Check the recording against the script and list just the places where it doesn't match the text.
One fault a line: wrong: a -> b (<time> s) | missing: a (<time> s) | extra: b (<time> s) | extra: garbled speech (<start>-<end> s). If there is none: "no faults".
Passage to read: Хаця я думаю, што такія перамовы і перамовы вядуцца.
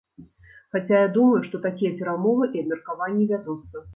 wrong: перамовы -> абмеркаванні (2.6 s)